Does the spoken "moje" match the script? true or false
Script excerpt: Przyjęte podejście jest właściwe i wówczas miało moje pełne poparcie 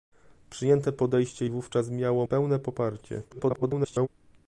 false